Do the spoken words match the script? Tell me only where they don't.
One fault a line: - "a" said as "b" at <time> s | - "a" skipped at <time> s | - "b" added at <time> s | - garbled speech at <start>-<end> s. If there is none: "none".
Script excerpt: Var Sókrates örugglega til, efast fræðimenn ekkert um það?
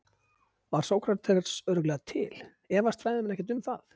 none